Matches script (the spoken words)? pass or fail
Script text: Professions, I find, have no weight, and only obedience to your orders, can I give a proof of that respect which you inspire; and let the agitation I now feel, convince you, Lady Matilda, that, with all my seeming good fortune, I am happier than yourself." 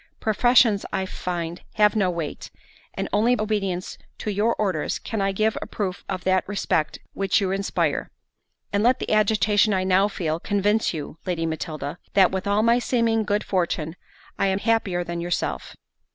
pass